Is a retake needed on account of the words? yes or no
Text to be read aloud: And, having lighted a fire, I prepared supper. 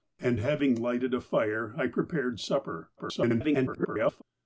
yes